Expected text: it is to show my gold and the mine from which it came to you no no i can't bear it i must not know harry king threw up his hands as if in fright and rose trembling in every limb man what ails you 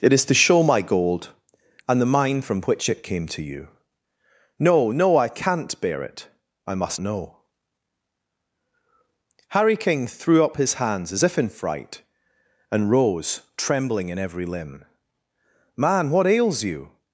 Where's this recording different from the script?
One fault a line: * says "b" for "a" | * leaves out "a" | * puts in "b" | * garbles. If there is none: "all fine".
* leaves out "not"